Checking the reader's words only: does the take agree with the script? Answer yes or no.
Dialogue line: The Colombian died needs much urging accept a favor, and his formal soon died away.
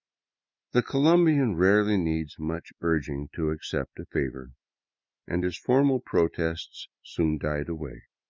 no